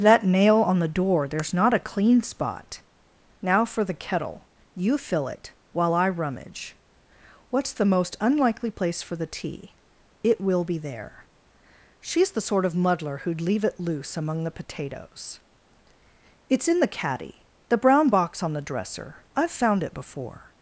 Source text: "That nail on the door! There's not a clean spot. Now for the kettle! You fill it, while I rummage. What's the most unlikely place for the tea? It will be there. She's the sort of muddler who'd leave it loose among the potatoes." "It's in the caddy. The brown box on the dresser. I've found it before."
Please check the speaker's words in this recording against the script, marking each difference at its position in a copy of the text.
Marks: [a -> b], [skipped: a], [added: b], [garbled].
"That nail on the door! There's not a clean spot. Now for the kettle! You fill it, while I rummage. What's the most unlikely place for the tea? It will be there. She's the sort of muddler who'd leave it loose among the potatoes." "It's in the caddy. The brown box on the dresser. I've found it before."